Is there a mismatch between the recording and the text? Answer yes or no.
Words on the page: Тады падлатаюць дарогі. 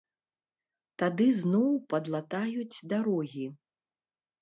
yes